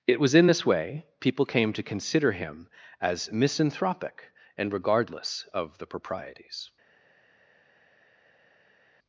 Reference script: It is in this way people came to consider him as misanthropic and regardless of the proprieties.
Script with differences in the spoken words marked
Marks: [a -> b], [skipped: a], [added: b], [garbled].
It [is -> was] in this way people came to consider him as misanthropic and regardless of the proprieties.